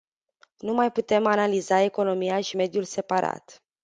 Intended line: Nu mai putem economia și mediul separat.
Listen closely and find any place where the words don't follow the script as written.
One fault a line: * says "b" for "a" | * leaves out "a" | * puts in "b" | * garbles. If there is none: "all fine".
* puts in "analiza"